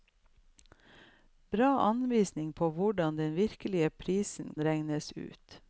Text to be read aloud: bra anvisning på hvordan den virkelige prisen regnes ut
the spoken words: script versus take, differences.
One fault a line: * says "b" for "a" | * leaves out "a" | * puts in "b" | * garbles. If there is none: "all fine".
all fine